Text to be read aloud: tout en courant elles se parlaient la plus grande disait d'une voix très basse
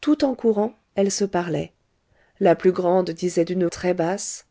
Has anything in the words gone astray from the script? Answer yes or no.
yes